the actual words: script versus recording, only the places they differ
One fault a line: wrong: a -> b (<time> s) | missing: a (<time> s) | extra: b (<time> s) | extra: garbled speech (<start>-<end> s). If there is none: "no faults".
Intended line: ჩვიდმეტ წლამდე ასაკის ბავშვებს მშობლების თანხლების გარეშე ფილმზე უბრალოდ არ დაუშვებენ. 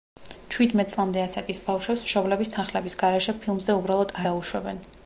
missing: არ (4.2 s)